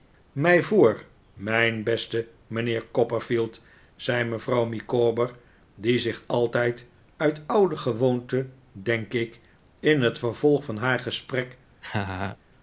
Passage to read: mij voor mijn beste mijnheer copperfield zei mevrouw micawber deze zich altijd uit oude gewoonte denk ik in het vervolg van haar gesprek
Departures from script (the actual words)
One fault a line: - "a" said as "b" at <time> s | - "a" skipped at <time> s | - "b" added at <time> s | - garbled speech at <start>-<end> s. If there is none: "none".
- "deze" said as "die" at 5.8 s